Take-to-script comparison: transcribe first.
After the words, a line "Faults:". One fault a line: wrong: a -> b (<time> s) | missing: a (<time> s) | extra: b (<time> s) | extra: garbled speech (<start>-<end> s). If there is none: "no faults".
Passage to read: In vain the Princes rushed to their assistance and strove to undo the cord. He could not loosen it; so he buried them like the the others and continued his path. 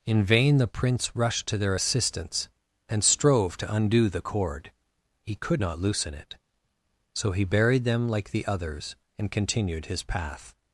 In vain the Prince rushed to their assistance and strove to undo the cord. He could not loosen it; so he buried them like the others and continued his path.
Faults:
wrong: Princes -> Prince (0.7 s)
missing: the (8.4 s)